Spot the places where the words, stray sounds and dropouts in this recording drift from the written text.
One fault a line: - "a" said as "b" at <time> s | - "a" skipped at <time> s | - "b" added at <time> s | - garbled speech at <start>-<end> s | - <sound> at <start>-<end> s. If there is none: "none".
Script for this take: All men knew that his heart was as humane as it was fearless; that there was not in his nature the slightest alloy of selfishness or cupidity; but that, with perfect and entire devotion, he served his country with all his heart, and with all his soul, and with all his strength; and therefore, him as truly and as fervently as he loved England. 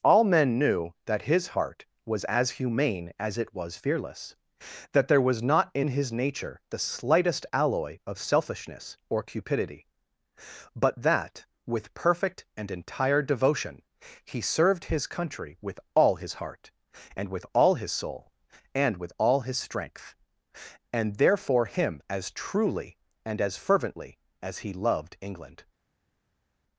none